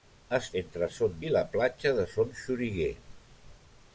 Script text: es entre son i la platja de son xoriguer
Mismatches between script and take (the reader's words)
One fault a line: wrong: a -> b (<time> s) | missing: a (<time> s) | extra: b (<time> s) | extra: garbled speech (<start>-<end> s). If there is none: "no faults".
no faults